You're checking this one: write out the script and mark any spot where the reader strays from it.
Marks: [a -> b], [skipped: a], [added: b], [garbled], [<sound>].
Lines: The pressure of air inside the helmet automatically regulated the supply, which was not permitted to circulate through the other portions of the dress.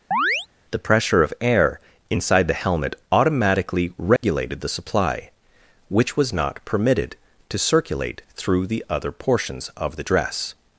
[chirp] The pressure of air inside the helmet automatically regulated [dropout] the supply, which was not permitted to circulate through the other portions of the dress.